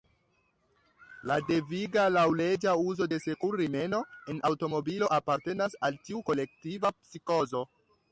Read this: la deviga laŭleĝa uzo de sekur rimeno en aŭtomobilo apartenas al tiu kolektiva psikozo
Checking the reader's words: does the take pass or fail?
pass